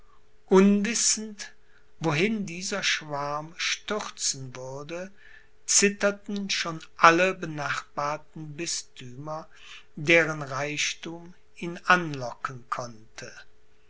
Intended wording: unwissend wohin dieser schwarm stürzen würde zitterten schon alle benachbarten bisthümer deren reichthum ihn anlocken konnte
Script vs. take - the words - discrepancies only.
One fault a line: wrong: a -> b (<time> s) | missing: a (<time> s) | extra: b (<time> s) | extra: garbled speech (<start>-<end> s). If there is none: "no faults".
no faults